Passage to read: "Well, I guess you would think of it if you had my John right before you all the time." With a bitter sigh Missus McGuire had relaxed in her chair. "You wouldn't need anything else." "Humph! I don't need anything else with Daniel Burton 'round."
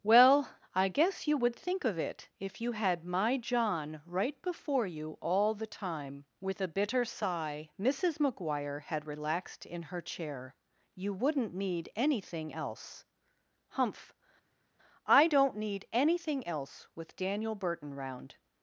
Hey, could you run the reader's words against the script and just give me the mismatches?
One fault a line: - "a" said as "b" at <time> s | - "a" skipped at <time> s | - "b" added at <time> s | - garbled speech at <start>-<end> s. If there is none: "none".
none